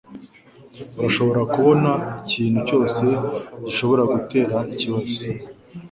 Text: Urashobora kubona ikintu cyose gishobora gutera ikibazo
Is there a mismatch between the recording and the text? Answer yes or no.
no